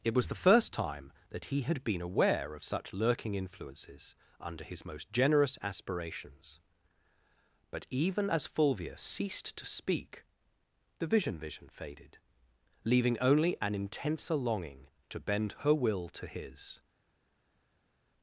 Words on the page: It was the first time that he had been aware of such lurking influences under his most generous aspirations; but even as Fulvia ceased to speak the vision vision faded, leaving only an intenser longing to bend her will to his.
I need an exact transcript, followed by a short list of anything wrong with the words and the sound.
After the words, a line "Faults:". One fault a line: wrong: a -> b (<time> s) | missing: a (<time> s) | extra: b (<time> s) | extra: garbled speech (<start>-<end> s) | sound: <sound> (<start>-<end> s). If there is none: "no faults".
It was the first time that he had been aware of such lurking influences under his most generous aspirations; but even as Fulvia ceased to speak the vision vision faded, leaving only an intenser longing to bend her will to his.
Faults:
no faults